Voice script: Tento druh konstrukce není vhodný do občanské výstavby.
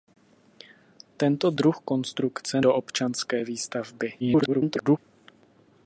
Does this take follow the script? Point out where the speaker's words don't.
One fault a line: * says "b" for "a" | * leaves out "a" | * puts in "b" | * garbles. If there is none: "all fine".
* leaves out "není vhodný"
* garbles